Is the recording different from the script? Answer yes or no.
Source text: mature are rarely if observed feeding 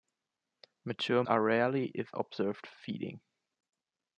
no